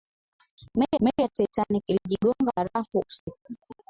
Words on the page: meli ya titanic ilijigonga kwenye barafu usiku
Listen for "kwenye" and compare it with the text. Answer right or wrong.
wrong